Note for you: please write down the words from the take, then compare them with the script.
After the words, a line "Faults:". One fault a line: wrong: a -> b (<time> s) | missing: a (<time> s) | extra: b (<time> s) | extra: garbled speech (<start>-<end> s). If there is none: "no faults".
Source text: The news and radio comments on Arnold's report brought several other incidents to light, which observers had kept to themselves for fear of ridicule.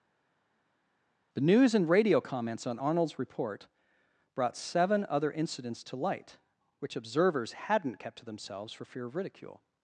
The news and radio comments on Arnold's report brought seven other incidents to light, which observers hadn't kept to themselves for fear of ridicule.
Faults:
wrong: several -> seven (4.6 s)
wrong: had -> hadn't (7.5 s)